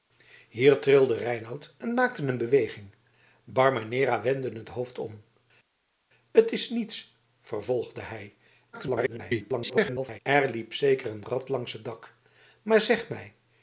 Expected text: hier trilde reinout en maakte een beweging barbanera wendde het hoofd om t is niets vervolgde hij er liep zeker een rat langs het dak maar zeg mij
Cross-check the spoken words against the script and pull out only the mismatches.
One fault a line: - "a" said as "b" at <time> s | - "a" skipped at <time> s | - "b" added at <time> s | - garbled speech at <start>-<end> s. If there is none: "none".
- garbled speech at 8.7-10.2 s